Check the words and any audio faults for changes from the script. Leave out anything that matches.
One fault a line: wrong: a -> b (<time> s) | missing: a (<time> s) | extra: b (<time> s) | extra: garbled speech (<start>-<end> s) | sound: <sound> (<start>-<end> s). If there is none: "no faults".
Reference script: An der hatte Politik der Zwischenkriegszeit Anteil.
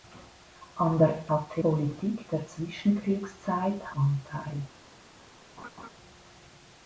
sound: laugh (5.6-5.9 s)